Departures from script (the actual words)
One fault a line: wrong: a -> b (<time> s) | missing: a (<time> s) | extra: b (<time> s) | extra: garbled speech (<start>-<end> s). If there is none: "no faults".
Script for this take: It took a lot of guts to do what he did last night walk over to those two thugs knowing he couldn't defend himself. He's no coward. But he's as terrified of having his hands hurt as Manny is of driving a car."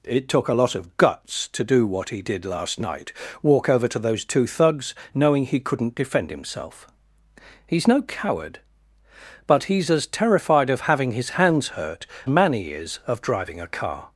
missing: as (12.1 s)